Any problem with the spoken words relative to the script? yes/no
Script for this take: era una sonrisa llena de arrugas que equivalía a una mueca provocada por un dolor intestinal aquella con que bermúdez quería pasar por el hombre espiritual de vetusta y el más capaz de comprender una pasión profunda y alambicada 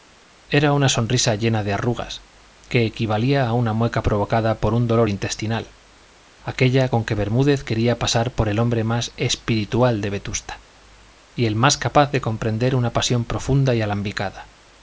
yes